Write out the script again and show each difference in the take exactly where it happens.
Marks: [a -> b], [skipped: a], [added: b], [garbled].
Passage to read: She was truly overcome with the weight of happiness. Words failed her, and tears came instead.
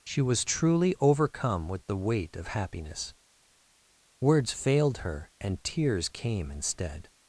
She was truly overcome with the weight of happiness. Words failed her, and tears came instead.